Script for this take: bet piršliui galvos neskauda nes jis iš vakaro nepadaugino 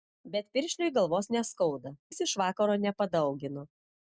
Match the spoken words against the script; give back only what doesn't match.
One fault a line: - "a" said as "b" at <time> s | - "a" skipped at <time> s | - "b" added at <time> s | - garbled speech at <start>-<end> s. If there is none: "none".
- "nes" skipped at 1.9 s